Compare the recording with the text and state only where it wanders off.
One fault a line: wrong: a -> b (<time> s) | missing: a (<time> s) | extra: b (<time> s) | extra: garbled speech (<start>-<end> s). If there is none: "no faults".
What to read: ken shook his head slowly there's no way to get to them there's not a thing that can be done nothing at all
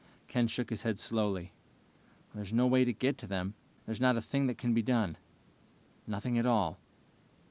no faults